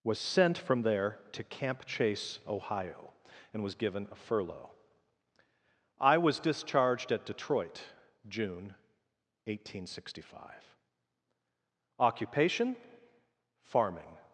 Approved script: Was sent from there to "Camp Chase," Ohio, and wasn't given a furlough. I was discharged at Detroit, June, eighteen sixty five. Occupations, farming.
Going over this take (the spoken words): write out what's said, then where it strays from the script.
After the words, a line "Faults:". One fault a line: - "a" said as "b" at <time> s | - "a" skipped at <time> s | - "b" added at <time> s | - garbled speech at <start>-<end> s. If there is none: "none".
Was sent from there to "Camp Chase," Ohio, and was given a furlough. I was discharged at Detroit, June, eighteen sixty five. Occupation, farming.
Faults:
- "wasn't" said as "was" at 3.6 s
- "Occupations" said as "Occupation" at 12.0 s